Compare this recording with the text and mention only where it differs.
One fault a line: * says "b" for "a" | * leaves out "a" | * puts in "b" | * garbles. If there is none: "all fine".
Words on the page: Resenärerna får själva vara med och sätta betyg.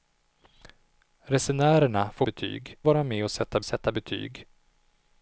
* says "betyg" for "själva"
* puts in "sätta"